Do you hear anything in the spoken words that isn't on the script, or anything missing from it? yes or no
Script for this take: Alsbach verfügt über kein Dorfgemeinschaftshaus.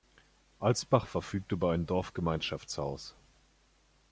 yes